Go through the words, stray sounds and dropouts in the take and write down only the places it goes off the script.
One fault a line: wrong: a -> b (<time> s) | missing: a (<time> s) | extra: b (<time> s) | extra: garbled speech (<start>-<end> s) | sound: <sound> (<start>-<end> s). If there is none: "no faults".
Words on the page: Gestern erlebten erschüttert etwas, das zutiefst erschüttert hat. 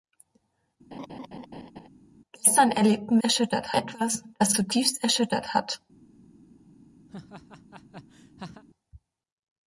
sound: laugh (0.9-1.9 s)
sound: laugh (7.1-8.6 s)